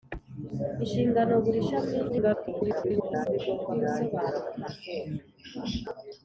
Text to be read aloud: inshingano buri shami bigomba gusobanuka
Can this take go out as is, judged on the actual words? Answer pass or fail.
fail